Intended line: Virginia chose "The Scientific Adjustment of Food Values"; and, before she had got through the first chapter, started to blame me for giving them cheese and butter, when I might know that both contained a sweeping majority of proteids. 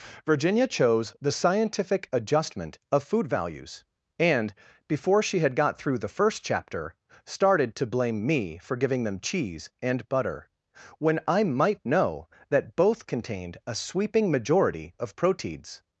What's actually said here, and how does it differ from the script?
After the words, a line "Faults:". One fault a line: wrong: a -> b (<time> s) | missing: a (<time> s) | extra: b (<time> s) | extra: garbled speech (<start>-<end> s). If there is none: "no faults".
Virginia chose "The Scientific Adjustment of Food Values"; and, before she had got through the first chapter, started to blame me for giving them cheese and butter, when I might know that both contained a sweeping majority of proteids.
Faults:
no faults